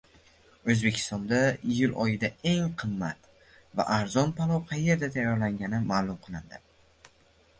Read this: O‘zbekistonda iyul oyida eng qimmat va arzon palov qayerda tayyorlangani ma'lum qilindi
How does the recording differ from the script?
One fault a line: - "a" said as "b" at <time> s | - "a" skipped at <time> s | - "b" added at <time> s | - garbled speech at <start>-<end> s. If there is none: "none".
none